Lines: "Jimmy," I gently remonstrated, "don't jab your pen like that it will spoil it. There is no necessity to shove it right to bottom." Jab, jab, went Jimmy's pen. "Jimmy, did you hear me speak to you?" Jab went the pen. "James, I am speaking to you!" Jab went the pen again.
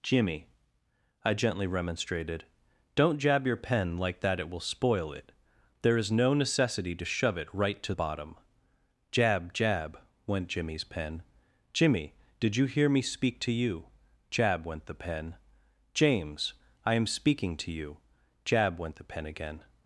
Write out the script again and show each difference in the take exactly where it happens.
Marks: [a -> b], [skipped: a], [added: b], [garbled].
"Jimmy," I gently remonstrated, "don't jab your pen like that it will spoil it. There is no necessity to shove it right to bottom." Jab, jab, went Jimmy's pen. "Jimmy, did you hear me speak to you?" Jab went the pen. "James, I am speaking to you!" Jab went the pen again.